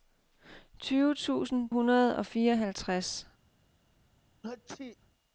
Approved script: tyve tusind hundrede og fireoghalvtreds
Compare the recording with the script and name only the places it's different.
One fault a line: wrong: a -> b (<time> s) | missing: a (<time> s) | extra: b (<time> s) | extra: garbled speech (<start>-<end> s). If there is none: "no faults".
no faults